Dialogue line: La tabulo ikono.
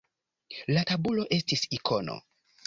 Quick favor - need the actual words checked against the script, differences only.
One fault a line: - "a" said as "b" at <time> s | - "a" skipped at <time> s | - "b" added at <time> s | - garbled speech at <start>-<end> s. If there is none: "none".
- "estis" added at 1.4 s